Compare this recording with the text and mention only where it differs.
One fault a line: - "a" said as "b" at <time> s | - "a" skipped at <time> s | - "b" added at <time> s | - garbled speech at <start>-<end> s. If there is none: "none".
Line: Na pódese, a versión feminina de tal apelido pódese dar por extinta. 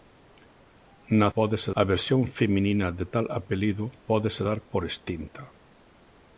none